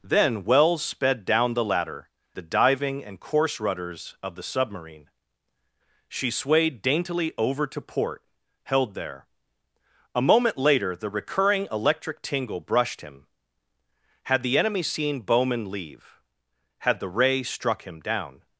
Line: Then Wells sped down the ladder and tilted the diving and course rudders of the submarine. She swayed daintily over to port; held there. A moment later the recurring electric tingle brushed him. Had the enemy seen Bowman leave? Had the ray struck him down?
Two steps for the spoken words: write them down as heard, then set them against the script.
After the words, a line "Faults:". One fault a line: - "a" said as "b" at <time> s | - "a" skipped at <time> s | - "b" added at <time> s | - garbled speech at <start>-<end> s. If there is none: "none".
Then Wells sped down the ladder the diving and course rudders of the submarine. She swayed daintily over to port; held there. A moment later the recurring electric tingle brushed him. Had the enemy seen Bowman leave? Had the ray struck him down?
Faults:
- "and tilted" skipped at 2.1 s